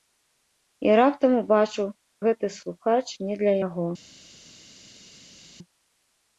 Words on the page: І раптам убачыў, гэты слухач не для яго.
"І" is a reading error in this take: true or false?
false